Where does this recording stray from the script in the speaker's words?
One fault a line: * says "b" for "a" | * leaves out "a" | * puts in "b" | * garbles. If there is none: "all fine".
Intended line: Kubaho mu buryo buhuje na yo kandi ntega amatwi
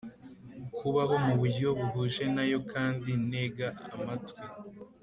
all fine